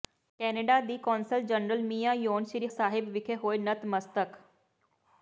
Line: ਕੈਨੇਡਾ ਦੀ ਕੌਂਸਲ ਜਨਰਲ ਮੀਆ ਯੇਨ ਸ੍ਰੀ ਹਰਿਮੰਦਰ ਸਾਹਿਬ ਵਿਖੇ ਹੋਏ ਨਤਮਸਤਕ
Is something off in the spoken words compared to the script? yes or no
yes